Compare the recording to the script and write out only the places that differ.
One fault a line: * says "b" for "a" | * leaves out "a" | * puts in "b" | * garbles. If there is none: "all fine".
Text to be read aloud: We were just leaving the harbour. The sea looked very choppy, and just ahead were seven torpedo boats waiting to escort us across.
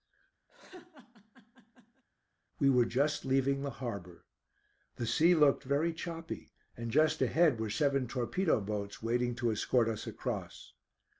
all fine